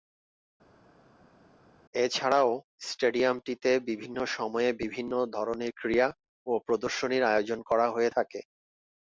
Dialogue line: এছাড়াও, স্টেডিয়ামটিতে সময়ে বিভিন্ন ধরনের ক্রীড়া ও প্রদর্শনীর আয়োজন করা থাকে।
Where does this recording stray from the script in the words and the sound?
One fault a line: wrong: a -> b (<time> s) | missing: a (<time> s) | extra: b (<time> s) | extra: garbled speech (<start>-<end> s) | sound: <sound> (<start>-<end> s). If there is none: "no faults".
extra: বিভিন্ন (3.9 s)
extra: হয়ে (7.9 s)